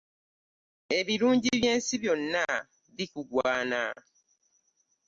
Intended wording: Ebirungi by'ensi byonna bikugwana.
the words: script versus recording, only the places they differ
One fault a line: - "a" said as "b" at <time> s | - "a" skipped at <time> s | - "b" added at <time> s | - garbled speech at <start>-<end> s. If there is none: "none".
none